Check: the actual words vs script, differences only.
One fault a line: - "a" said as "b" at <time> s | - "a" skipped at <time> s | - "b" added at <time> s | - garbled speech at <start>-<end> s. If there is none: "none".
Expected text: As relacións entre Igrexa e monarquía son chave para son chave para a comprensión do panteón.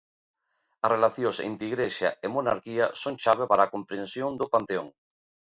- "son chave para" skipped at 3.6 s